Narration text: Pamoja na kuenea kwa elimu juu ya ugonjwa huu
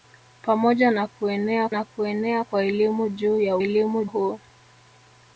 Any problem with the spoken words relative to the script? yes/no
yes